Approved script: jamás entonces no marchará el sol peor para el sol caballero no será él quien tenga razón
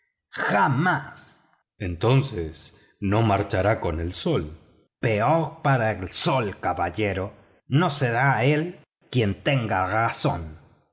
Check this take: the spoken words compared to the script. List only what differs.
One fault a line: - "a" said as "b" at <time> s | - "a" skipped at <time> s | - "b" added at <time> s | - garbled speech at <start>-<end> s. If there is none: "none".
- "con" added at 3.8 s